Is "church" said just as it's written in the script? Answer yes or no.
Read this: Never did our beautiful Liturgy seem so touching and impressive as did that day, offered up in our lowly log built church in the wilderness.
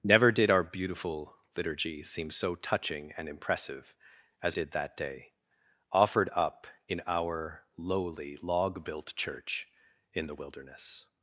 yes